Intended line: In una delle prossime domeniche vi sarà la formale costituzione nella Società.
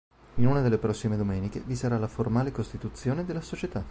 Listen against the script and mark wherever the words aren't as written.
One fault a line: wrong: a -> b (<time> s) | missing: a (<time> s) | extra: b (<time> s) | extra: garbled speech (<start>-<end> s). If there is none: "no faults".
wrong: nella -> della (3.2 s)